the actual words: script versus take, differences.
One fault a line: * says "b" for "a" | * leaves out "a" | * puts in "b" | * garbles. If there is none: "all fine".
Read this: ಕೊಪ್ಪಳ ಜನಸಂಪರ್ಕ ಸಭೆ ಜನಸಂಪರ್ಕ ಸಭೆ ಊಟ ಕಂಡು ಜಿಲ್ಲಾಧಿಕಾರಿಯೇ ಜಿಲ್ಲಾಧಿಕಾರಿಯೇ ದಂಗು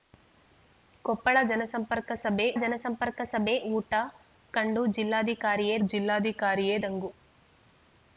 all fine